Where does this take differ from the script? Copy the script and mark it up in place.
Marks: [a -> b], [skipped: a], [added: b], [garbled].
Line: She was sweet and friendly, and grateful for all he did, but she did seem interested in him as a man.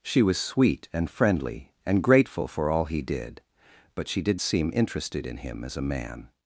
She was sweet and friendly, and grateful for all he did, but she did seem interested in him as a man.